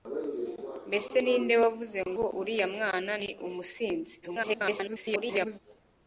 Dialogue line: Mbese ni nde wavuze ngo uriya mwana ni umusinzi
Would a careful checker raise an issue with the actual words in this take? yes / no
yes